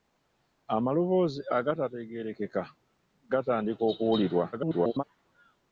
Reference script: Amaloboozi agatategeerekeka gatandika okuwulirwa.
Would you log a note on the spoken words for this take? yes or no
yes